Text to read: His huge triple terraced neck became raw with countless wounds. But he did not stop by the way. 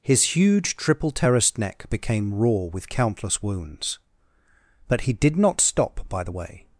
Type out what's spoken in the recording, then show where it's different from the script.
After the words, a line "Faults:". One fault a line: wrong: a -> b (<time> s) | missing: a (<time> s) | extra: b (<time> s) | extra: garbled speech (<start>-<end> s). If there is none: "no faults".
His huge triple terraced neck became raw with countless wounds. But he did not stop by the way.
Faults:
no faults